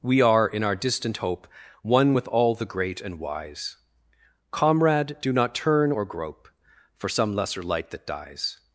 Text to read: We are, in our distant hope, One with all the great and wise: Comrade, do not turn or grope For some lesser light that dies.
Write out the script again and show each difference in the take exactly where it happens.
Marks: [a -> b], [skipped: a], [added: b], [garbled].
We are, in our distant hope, One with all the great and wise: Comrade, do not turn or grope For some lesser light that dies.